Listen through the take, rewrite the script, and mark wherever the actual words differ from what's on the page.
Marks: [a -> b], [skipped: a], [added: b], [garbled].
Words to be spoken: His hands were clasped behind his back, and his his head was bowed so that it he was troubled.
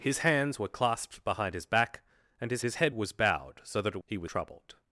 His hands were clasped behind his back, and his his head was bowed so that it he was troubled.